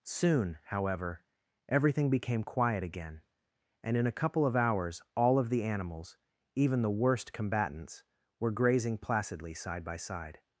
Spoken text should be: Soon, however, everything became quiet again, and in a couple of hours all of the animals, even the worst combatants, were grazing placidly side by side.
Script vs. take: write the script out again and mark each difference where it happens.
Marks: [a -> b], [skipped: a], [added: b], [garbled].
Soon, however, everything became quiet again, and in a couple of hours all of the animals, even the worst combatants, were grazing placidly side by side.